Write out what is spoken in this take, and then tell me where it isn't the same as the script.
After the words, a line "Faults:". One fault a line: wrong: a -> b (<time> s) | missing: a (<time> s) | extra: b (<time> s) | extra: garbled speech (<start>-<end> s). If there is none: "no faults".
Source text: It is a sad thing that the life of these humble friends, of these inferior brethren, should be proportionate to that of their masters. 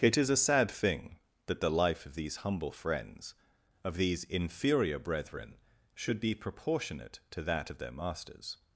It is a sad thing that the life of these humble friends, of these inferior brethren, should be proportionate to that of their masters.
Faults:
no faults